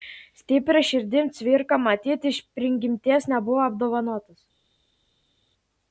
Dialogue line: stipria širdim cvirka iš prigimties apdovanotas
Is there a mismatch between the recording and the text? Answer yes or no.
yes